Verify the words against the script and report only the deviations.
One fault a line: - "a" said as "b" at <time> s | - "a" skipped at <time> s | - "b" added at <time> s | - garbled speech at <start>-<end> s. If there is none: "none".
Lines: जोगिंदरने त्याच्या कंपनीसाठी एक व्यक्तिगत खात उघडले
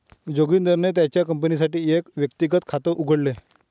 none